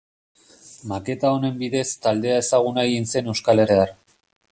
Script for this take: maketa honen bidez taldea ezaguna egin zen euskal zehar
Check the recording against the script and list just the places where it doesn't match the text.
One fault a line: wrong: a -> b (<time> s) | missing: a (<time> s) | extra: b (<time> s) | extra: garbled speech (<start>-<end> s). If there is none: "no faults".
no faults